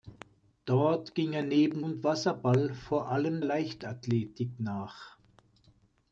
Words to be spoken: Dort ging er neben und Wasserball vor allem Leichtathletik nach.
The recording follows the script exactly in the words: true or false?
true